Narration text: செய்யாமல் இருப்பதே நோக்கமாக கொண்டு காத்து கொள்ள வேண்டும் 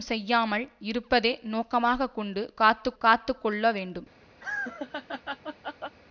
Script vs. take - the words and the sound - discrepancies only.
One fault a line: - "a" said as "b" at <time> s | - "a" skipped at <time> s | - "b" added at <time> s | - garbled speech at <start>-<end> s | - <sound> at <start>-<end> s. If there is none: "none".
- "காத்து" added at 3.0 s
- laugh at 4.4-6.0 s